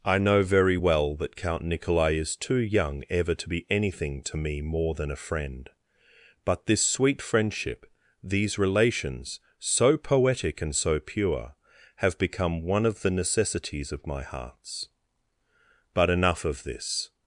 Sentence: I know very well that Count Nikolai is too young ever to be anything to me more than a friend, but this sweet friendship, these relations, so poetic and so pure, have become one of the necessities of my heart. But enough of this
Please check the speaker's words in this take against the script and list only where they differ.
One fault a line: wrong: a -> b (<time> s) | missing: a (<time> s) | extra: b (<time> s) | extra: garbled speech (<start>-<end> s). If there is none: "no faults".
wrong: heart -> hearts (14.2 s)